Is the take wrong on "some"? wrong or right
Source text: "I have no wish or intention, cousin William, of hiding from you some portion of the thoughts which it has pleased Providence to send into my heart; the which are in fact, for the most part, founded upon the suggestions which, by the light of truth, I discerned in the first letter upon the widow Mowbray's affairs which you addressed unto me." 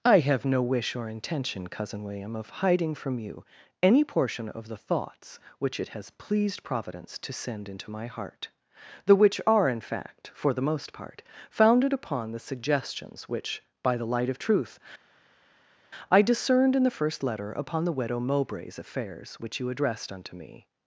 wrong